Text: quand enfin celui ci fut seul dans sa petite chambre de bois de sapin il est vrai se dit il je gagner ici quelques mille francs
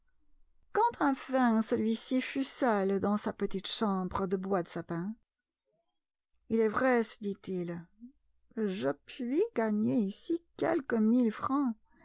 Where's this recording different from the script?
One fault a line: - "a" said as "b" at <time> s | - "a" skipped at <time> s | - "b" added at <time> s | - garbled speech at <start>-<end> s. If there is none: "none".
- "puis" added at 9.1 s